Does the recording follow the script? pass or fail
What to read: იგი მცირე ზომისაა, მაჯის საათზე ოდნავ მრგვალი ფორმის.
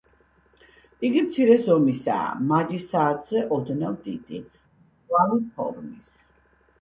fail